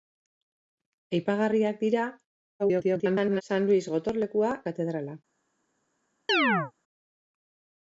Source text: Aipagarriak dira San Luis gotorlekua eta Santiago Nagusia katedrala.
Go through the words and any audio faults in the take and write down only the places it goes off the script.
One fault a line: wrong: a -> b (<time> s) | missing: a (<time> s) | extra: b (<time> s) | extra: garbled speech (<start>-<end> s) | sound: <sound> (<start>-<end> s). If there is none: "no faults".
extra: garbled speech (2.6-3.4 s)
missing: eta Santiago Nagusia (4.5 s)
sound: chirp (6.3-6.7 s)